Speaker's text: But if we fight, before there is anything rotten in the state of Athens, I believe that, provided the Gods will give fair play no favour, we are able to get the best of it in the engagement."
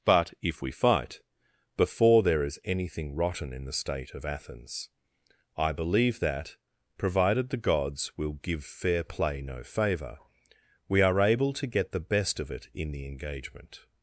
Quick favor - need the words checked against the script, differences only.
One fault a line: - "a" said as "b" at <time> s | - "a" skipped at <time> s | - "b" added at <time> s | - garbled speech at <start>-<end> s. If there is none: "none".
none